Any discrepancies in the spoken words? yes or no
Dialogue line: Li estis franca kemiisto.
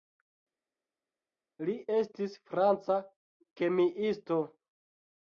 no